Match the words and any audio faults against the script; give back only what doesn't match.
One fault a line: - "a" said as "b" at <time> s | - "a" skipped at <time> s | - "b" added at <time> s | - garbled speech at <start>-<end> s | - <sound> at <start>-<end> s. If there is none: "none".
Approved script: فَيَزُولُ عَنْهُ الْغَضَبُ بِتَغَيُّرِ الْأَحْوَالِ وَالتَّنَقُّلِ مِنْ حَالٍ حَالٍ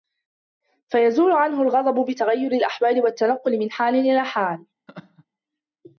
- "إلَى" added at 4.0 s
- laugh at 4.9-5.3 s